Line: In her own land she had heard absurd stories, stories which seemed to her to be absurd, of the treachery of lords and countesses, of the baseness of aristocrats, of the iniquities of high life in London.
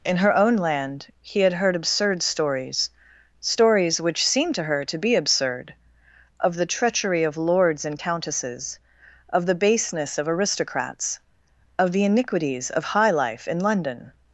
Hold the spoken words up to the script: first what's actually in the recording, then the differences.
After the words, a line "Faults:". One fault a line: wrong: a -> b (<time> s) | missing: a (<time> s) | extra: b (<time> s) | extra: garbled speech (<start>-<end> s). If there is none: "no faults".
In her own land he had heard absurd stories, stories which seemed to her to be absurd, of the treachery of lords and countesses, of the baseness of aristocrats, of the iniquities of high life in London.
Faults:
wrong: she -> he (1.2 s)